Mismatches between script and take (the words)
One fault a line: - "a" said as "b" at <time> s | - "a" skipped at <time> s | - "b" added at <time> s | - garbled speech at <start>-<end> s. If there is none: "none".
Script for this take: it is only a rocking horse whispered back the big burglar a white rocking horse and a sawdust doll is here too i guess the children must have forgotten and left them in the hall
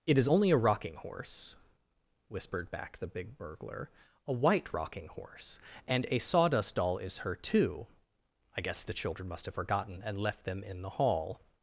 - "here" said as "her" at 7.2 s